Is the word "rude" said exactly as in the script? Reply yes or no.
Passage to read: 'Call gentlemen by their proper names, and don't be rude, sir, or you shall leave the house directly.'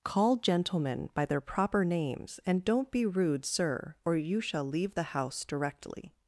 yes